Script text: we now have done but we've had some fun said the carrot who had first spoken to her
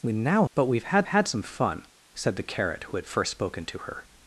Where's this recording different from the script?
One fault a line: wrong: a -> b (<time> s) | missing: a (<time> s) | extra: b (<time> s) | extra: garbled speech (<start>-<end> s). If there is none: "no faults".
missing: have done (0.5 s)
extra: had (1.0 s)